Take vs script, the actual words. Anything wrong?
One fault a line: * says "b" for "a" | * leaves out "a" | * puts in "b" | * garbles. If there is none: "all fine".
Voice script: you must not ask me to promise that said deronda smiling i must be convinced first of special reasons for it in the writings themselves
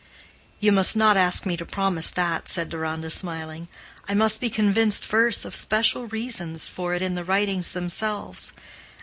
all fine